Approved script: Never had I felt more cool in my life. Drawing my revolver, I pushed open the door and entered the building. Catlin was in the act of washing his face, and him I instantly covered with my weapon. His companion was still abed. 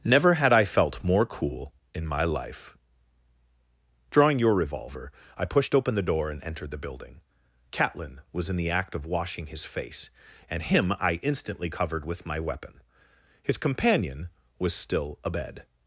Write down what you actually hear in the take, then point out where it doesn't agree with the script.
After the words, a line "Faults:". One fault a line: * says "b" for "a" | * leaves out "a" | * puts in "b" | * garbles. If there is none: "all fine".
Never had I felt more cool in my life. Drawing your revolver, I pushed open the door and entered the building. Catlin was in the act of washing his face, and him I instantly covered with my weapon. His companion was still abed.
Faults:
* says "your" for "my"